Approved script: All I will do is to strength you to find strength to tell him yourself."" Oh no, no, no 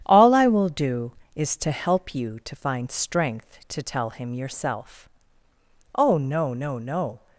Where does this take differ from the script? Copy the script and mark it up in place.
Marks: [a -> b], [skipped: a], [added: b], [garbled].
All I will do is to [strength -> help] you to find strength to tell him yourself."" Oh no, no, no